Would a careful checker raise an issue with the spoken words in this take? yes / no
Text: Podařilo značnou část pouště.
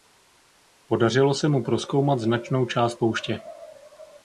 yes